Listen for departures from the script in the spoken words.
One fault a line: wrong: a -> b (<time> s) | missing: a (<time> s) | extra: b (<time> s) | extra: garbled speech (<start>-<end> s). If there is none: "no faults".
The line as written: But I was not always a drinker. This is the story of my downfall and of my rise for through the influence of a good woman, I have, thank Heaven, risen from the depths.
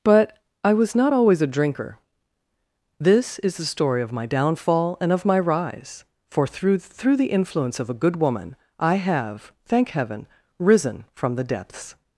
extra: through (6.8 s)